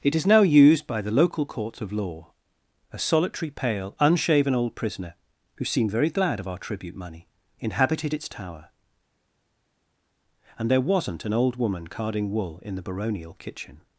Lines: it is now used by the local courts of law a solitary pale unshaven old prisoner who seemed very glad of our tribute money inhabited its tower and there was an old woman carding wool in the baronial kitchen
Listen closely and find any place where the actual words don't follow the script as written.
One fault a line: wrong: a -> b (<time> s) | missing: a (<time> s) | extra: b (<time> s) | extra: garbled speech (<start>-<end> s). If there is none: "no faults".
wrong: was -> wasn't (10.8 s)